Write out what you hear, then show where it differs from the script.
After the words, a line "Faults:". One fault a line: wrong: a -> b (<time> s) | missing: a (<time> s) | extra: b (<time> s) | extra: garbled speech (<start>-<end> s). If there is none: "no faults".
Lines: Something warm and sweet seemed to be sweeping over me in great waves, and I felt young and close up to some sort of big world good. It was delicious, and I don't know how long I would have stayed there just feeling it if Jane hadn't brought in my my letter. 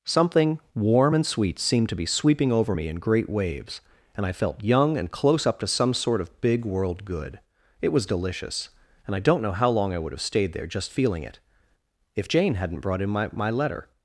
Something warm and sweet seemed to be sweeping over me in great waves, and I felt young and close up to some sort of big world good. It was delicious, and I don't know how long I would have stayed there just feeling it if Jane hadn't brought in my my letter.
Faults:
no faults